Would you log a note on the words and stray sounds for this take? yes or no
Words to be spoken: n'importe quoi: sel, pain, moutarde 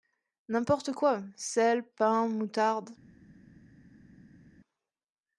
no